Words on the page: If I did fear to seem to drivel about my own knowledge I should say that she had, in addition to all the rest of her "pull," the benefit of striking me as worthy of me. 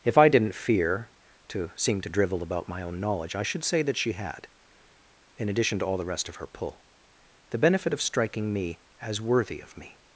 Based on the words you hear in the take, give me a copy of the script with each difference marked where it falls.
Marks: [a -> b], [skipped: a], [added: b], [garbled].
If I [did -> didn't] fear to seem to drivel about my own knowledge I should say that she had, in addition to all the rest of her "pull," the benefit of striking me as worthy of me.